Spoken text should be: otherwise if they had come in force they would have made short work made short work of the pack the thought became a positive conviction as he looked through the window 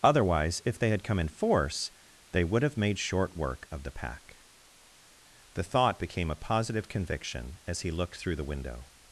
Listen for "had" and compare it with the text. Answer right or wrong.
right